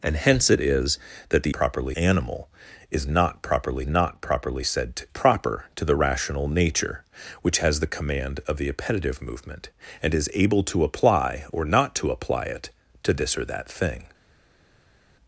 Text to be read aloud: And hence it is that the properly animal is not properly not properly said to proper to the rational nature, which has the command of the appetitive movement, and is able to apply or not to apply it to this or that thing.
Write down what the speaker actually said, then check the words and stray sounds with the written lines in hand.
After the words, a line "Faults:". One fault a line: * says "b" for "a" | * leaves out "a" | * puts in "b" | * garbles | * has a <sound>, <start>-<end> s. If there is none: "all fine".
And hence it is that the properly animal is not properly not properly said to proper to the rational nature, which has the command of the appetitive movement, and is able to apply or not to apply it to this or that thing.
Faults:
all fine